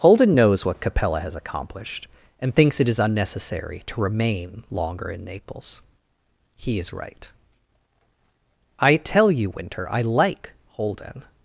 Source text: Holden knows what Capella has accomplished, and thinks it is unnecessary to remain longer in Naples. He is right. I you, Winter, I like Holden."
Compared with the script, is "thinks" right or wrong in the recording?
right